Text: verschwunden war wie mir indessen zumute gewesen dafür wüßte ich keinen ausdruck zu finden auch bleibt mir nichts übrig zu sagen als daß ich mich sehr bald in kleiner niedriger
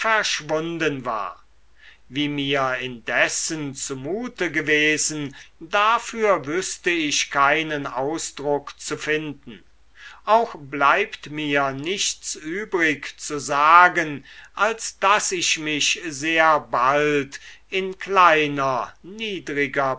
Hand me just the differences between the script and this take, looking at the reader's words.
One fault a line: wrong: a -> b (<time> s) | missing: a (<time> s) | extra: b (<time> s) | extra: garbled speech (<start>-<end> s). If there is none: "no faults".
no faults